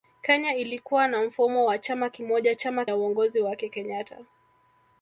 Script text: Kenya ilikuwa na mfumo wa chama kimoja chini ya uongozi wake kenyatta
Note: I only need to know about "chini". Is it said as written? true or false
false